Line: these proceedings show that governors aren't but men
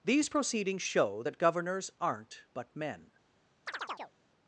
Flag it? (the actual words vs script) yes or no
no